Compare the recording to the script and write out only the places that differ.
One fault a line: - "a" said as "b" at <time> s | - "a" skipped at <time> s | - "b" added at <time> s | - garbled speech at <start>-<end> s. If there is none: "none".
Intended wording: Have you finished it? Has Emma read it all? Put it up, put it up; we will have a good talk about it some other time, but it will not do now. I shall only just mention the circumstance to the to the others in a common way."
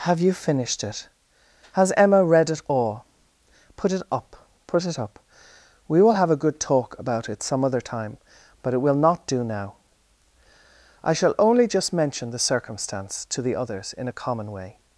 - "to the" skipped at 13.6 s